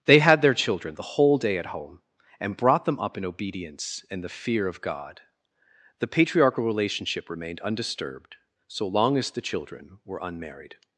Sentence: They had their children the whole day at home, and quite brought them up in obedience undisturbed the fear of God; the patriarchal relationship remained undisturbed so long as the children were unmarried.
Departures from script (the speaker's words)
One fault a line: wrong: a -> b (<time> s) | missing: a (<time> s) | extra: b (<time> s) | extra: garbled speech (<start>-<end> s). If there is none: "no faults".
missing: quite (2.6 s)
wrong: undisturbed -> and (4.1 s)